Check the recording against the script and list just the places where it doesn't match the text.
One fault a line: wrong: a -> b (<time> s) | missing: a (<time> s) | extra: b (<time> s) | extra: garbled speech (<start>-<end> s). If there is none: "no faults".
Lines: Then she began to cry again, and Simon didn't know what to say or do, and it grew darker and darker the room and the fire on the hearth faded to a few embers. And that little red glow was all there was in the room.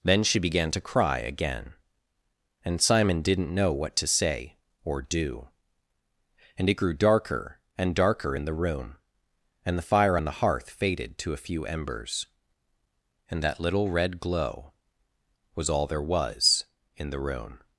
extra: in (8.3 s)